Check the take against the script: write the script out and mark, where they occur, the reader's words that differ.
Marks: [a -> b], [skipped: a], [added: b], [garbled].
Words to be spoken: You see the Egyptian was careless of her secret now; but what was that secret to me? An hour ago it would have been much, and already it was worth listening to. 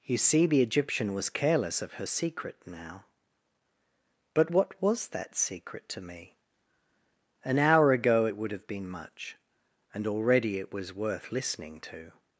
You see the Egyptian was careless of her secret now; but what was that secret to me? An hour ago it would have been much, and already it was worth listening to.